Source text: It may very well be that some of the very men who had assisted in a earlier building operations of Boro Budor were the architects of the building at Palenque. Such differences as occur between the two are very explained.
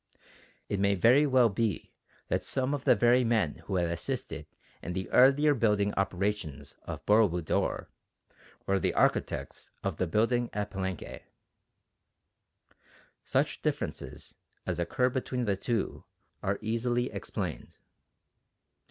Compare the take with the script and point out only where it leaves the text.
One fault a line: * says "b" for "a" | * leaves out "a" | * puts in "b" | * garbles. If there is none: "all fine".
* says "the" for "a"
* says "easily" for "very"